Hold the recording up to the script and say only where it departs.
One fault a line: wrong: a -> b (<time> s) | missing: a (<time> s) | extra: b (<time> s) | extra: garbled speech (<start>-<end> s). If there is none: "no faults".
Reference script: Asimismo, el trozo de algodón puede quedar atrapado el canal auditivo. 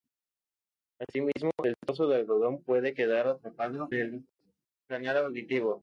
no faults